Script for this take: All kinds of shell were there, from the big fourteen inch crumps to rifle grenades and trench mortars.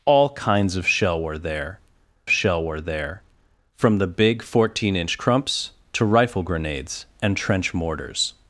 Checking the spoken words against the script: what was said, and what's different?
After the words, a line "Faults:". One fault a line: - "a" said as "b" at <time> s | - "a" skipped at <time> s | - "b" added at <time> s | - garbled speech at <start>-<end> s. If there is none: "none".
All kinds of shell were there shell were there, from the big fourteen inch crumps to rifle grenades and trench mortars.
Faults:
- "shell were there" added at 2.3 s